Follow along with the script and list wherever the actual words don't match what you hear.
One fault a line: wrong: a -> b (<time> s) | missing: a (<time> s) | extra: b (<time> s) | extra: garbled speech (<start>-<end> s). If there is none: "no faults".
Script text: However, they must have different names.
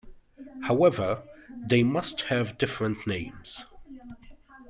no faults